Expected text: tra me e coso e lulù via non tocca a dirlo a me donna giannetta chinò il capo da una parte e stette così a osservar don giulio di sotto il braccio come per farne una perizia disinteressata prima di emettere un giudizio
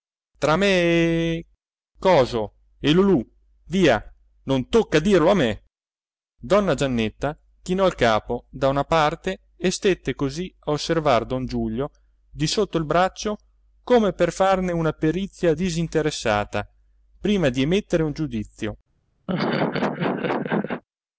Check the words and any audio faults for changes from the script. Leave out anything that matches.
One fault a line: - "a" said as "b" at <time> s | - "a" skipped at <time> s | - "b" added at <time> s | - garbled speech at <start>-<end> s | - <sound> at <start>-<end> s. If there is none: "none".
- laugh at 19.3-20.8 s